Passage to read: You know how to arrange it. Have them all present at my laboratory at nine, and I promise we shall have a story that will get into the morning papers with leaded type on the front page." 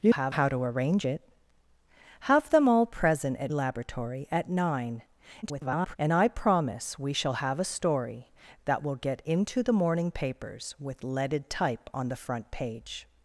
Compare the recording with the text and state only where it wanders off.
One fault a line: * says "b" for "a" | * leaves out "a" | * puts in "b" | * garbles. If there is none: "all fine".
* says "have" for "know"
* leaves out "my"
* garbles